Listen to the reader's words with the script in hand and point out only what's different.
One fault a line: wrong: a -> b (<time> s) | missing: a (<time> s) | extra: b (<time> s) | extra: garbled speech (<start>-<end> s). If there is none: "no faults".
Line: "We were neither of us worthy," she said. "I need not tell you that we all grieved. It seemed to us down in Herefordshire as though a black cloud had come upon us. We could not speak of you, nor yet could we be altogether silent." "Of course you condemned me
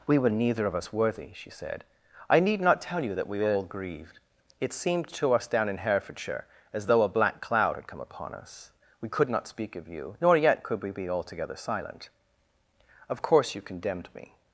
no faults